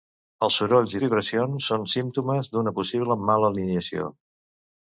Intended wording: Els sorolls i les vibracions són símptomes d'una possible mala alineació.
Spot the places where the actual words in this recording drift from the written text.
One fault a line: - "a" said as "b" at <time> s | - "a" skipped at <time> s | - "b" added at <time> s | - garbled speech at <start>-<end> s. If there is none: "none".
- "les" skipped at 1.0 s